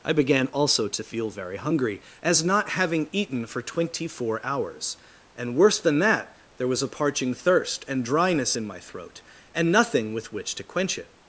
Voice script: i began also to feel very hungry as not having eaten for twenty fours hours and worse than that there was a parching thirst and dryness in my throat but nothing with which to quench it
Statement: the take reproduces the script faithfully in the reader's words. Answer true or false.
false